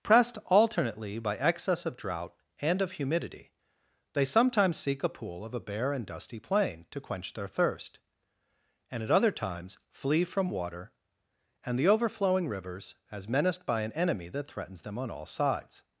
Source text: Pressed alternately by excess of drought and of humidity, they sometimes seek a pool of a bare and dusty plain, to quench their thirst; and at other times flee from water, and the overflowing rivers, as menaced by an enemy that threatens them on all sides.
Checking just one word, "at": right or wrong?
right